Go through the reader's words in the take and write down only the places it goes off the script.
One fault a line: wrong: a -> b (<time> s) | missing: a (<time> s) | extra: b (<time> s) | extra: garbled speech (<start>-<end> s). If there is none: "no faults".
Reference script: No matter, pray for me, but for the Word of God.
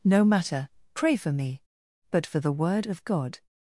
no faults